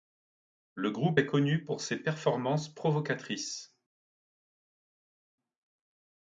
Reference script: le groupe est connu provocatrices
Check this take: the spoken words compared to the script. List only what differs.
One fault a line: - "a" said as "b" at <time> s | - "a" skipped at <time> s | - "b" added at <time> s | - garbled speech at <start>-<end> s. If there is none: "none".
- "pour ses performances" added at 1.6 s